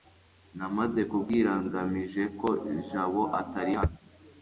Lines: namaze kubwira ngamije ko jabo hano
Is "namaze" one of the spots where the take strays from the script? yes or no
no